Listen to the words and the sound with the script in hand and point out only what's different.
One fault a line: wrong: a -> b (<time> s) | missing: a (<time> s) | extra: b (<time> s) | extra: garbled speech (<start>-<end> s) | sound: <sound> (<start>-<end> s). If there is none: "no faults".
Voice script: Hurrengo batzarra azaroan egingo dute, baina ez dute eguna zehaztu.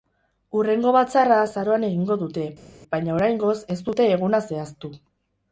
extra: oraingoz (3.2 s)